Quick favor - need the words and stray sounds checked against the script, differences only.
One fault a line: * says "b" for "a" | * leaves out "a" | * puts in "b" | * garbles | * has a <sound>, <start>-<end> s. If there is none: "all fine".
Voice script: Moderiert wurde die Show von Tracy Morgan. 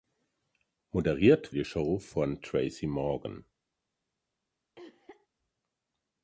* leaves out "wurde"
* has a cough, 4.8-5.3 s